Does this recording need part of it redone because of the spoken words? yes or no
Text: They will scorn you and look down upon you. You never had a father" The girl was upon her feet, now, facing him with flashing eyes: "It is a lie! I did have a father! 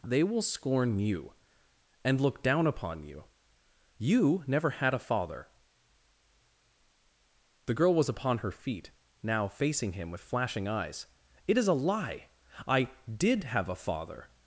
no